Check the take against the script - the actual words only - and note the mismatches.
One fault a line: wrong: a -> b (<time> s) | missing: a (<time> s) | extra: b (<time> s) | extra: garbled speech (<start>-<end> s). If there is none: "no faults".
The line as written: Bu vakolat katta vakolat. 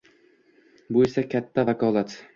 wrong: vakolat -> esa (1.1 s)